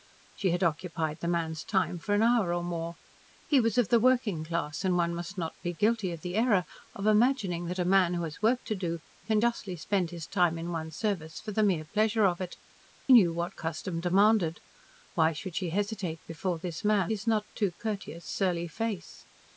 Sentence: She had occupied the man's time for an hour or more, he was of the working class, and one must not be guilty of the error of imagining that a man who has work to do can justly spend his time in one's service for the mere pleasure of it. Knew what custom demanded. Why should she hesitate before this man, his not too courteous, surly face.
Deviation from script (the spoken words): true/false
false